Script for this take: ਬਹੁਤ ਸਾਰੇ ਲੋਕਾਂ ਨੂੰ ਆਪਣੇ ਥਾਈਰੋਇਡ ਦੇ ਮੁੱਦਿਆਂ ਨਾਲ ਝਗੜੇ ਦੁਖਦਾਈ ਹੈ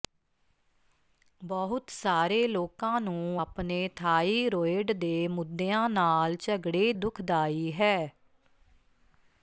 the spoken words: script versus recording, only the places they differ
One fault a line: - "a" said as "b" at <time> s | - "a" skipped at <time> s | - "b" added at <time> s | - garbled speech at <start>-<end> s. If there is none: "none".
none